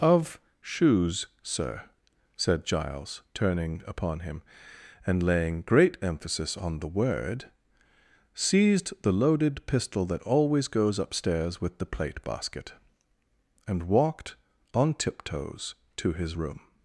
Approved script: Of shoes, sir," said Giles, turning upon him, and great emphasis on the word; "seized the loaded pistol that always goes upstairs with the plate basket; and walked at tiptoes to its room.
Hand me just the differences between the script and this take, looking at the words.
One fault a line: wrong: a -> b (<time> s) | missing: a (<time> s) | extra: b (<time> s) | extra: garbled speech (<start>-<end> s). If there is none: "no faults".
extra: laying (5.2 s)
wrong: at -> on (14.7 s)
wrong: its -> his (16.1 s)